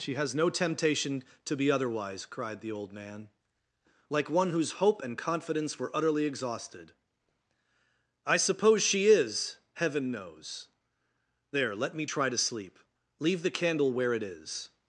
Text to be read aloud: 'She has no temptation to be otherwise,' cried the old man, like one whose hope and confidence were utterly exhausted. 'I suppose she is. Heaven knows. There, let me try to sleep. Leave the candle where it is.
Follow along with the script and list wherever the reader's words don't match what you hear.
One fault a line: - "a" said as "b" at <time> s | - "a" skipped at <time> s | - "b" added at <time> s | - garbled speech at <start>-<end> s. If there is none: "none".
none